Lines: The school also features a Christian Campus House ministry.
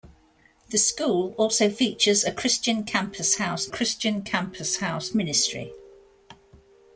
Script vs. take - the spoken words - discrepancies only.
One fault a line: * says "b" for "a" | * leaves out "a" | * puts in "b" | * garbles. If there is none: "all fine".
* puts in "Christian Campus House"